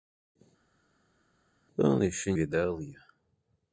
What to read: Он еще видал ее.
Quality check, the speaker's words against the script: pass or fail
pass